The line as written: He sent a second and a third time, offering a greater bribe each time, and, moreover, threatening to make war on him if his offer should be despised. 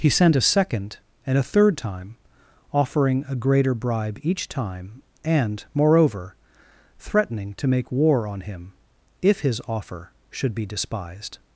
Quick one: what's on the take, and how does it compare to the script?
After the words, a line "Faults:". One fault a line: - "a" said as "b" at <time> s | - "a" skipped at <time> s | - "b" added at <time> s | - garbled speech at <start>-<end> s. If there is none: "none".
He sent a second and a third time, offering a greater bribe each time, and, moreover, threatening to make war on him if his offer should be despised.
Faults:
none